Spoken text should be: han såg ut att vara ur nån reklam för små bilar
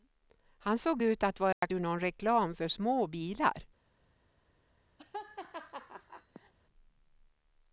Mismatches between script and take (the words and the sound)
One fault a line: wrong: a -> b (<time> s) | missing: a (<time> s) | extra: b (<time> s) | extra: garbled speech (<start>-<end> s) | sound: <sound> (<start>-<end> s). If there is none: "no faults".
sound: dropout (1.5-1.6 s)
sound: laugh (5.0-6.5 s)